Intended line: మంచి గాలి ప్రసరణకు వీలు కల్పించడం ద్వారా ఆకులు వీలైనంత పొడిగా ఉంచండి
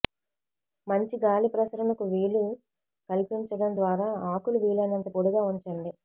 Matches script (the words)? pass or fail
pass